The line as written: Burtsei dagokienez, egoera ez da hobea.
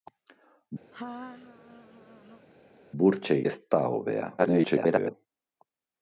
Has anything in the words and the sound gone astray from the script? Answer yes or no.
yes